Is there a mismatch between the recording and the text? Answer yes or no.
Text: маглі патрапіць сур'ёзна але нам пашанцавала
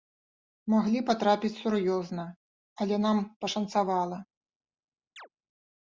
no